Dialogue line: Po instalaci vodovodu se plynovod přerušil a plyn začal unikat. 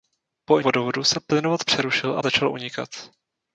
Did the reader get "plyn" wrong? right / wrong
wrong